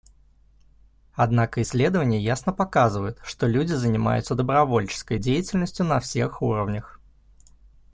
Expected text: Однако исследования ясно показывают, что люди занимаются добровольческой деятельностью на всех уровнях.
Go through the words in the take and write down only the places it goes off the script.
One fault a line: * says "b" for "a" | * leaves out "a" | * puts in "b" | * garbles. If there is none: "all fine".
all fine